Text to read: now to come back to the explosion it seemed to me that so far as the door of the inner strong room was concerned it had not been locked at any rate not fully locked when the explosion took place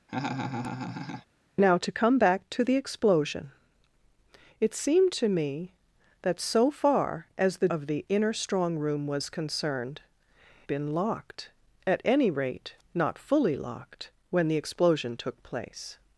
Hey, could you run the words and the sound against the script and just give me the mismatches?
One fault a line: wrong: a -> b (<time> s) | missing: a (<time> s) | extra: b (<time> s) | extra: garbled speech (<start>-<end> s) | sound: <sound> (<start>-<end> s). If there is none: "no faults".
sound: laugh (0.1-1.3 s)
missing: door (7.7 s)
missing: it had not (10.0 s)